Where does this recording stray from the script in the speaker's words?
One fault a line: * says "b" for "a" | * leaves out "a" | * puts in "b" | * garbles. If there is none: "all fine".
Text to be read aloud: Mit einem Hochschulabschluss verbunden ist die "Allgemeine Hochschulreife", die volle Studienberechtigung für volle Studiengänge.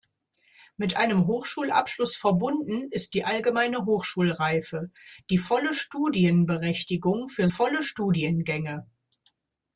all fine